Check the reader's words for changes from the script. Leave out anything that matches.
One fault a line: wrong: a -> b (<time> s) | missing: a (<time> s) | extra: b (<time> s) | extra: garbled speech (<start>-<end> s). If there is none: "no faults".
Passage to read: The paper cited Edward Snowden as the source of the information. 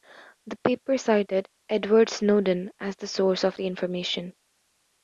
no faults